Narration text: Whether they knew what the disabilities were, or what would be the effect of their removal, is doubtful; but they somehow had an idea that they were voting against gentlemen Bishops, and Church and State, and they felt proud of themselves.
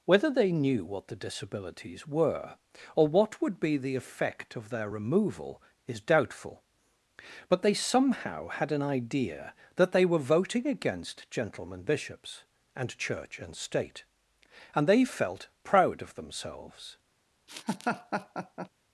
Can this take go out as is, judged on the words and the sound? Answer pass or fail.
fail